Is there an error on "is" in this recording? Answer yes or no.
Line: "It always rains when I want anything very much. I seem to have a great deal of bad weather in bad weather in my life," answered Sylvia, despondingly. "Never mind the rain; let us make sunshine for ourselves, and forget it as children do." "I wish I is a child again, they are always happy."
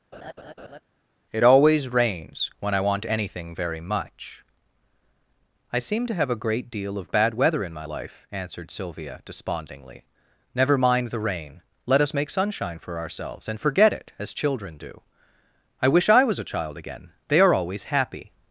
yes